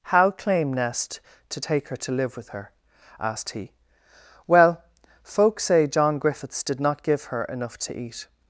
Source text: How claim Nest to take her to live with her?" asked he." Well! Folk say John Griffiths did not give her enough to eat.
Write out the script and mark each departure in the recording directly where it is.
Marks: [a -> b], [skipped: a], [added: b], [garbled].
How claim Nest to take her to live with her?" asked he." Well! Folk say John Griffiths did not give her enough to eat.